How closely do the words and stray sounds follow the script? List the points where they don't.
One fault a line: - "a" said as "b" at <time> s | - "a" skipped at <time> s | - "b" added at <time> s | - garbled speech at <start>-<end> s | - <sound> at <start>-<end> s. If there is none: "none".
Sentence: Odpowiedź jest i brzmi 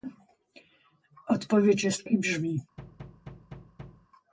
- thud at 2.8-4.1 s